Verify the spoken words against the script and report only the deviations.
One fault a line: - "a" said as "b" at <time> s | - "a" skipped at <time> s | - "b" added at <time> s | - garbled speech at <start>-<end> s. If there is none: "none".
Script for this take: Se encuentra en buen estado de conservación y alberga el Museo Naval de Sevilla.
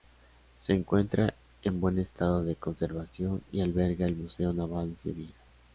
none